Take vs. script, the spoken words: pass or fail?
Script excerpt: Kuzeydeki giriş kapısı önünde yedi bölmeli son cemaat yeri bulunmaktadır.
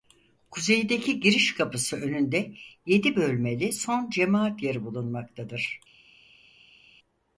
pass